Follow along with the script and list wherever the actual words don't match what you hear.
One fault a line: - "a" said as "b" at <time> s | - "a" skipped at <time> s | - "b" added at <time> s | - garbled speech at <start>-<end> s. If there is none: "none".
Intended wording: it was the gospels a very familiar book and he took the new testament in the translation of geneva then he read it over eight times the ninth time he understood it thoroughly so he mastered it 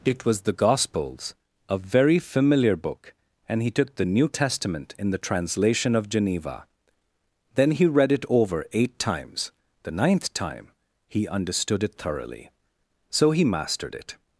none